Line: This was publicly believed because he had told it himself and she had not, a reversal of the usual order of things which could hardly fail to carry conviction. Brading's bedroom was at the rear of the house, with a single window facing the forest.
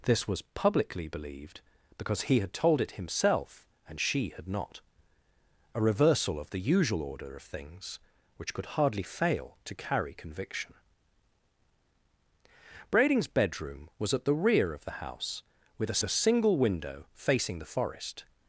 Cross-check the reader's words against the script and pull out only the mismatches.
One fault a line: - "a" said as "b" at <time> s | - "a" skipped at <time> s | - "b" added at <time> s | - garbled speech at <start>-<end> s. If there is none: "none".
- "a" added at 16.0 s